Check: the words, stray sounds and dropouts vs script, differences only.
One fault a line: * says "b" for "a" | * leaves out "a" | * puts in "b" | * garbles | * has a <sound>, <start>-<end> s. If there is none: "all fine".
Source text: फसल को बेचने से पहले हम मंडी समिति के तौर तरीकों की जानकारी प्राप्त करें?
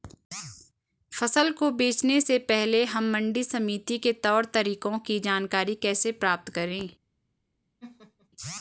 * puts in "कैसे"
* has a laugh, 7.8-8.3 s